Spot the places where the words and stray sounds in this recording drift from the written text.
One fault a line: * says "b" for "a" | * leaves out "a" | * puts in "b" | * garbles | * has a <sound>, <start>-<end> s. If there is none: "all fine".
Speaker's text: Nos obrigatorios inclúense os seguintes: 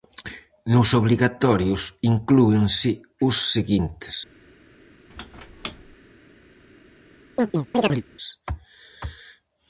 * has a squeak, 5.1-6.0 s
* has a chirp, 7.4-8.0 s